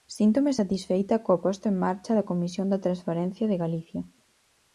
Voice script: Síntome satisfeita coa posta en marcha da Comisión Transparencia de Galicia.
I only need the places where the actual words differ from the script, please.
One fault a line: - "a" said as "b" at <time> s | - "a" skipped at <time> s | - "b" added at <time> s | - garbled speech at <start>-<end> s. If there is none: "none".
- "da" added at 2.7 s